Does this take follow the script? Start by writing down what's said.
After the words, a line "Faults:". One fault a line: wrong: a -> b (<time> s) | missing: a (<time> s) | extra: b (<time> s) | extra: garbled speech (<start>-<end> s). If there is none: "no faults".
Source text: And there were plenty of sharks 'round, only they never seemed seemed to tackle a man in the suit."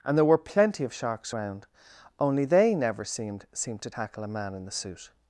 And there were plenty of sharks 'round, only they never seemed seemed to tackle a man in the suit."
Faults:
no faults